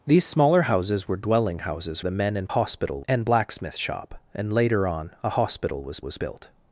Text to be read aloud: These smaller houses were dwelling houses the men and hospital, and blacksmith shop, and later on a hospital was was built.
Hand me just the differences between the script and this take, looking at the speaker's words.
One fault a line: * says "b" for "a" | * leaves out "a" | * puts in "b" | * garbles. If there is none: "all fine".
all fine